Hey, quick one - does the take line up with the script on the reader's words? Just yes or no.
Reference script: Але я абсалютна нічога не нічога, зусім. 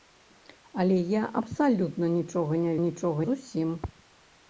yes